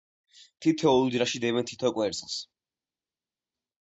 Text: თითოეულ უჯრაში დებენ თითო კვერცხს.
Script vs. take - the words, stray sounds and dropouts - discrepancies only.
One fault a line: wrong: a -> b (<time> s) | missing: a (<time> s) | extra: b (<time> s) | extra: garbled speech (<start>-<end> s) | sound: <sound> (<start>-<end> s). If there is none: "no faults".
no faults